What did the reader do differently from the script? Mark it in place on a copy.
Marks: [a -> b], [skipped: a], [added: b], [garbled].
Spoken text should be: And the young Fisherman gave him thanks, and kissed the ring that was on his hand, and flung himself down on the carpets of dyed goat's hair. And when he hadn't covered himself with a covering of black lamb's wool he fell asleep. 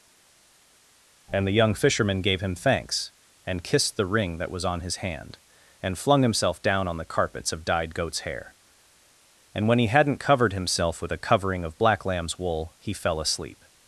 And the young Fisherman gave him thanks, and kissed the ring that was on his hand, and flung himself down on the carpets of dyed goat's hair. And when he hadn't covered himself with a covering of black lamb's wool he fell asleep.